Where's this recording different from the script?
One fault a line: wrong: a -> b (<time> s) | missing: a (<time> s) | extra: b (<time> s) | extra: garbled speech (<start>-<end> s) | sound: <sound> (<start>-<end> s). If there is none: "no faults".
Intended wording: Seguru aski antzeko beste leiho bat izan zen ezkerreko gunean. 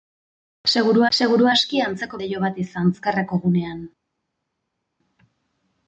extra: seguru (1.2 s)
missing: beste (2.2 s)
missing: zen (2.9 s)